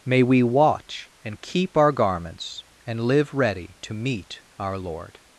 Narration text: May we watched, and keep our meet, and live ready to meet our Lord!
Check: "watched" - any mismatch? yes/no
yes